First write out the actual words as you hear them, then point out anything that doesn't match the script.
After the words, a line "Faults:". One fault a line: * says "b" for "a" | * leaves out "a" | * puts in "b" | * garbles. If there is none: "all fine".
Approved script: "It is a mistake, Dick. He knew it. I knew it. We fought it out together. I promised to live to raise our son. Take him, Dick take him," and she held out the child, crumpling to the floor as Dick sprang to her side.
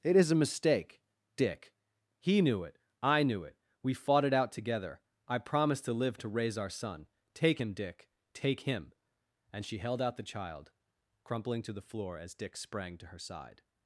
"It is a mistake, Dick. He knew it. I knew it. We fought it out together. I promised to live to raise our son. Take him, Dick take him," and she held out the child, crumpling to the floor as Dick sprang to her side.
Faults:
all fine